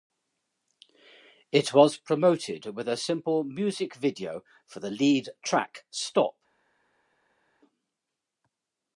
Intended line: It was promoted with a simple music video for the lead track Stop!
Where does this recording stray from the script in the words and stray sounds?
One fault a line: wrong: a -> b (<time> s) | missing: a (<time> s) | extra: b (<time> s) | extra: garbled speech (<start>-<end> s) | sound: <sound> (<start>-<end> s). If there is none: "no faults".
no faults